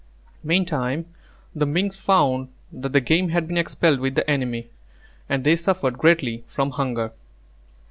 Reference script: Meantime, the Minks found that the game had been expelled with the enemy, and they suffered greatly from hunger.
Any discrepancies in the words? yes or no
no